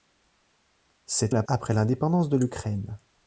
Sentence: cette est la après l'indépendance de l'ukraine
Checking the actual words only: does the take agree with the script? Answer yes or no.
yes